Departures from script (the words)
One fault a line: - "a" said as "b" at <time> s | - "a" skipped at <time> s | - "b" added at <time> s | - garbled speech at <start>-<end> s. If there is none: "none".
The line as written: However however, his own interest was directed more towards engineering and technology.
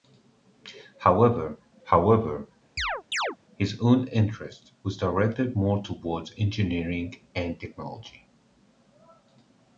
none